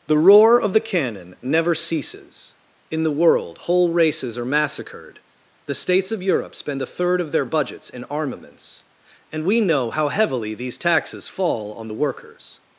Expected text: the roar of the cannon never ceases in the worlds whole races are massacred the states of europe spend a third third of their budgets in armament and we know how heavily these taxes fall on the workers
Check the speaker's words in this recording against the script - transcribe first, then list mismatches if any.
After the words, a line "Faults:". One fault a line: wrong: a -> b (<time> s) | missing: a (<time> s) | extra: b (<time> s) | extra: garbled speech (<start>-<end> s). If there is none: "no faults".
the roar of the cannon never ceases in the world whole races are massacred the states of europe spend a third of their budgets in armaments and we know how heavily these taxes fall on the workers
Faults:
wrong: worlds -> world (3.1 s)
missing: third (7.2 s)
wrong: armament -> armaments (8.0 s)